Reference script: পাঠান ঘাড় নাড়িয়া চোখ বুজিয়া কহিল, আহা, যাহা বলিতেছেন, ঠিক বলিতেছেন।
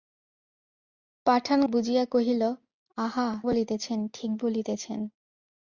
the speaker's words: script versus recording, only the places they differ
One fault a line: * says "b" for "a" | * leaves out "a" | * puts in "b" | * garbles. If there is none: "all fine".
* leaves out "ঘাড় নাড়িয়া চোখ"
* leaves out "যাহা"